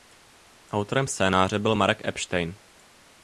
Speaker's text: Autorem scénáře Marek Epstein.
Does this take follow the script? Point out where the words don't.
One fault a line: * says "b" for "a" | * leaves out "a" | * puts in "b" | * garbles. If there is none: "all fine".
* puts in "byl"